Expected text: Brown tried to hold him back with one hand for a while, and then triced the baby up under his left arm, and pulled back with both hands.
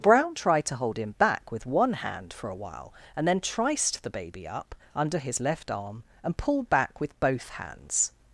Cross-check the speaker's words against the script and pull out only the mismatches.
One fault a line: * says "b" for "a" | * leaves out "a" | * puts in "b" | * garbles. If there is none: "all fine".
all fine